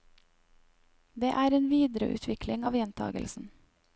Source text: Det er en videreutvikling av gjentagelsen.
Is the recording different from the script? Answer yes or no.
no